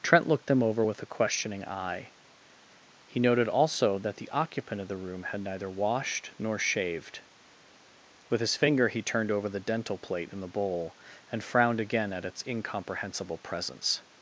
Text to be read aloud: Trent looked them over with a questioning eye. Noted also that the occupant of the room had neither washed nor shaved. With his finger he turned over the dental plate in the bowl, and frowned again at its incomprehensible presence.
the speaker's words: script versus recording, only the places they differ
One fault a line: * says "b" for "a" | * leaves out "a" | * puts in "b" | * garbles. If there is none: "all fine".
* puts in "He"